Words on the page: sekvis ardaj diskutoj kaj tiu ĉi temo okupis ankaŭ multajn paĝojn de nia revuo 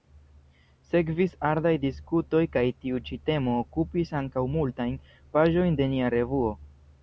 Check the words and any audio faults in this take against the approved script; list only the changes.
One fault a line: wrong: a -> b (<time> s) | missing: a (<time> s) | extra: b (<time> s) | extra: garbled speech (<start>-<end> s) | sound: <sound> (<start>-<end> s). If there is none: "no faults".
no faults